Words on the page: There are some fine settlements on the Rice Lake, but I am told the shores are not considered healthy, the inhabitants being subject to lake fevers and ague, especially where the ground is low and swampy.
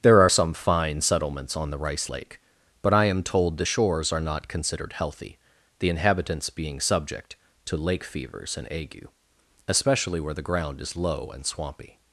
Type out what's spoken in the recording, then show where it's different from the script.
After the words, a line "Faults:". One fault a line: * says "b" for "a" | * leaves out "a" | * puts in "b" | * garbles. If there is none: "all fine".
There are some fine settlements on the Rice Lake, but I am told the shores are not considered healthy, the inhabitants being subject to lake fevers and ague, especially where the ground is low and swampy.
Faults:
all fine